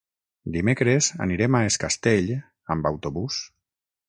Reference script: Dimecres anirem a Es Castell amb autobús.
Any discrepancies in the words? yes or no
no